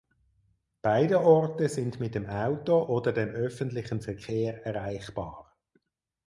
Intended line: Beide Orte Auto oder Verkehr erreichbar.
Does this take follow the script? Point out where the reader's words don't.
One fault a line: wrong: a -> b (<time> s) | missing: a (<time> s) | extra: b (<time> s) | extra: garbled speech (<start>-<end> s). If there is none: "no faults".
extra: sind mit dem (1.7 s)
extra: dem öffentlichen (3.1 s)